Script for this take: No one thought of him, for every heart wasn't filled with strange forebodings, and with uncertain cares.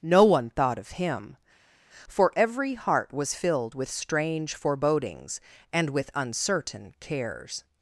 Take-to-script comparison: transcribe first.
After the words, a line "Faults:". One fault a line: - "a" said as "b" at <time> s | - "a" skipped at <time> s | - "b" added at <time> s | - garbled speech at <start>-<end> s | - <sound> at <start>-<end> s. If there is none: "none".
No one thought of him, for every heart was filled with strange forebodings, and with uncertain cares.
Faults:
- "wasn't" said as "was" at 3.1 s